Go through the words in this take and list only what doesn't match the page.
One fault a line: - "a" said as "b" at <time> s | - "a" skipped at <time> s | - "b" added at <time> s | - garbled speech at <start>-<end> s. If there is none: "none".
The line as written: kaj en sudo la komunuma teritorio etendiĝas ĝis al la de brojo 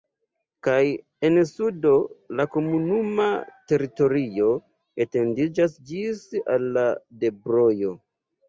none